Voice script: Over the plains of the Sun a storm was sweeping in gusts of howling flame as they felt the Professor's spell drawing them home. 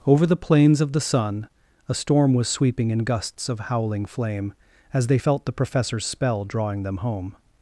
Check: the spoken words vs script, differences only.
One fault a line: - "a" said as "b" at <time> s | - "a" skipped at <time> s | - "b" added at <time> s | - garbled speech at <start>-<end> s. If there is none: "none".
none